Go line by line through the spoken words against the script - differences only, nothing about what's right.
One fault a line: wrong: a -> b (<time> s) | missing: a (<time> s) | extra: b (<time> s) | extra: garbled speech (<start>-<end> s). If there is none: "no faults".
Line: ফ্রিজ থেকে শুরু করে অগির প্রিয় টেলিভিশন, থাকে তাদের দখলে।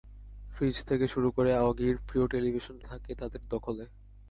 no faults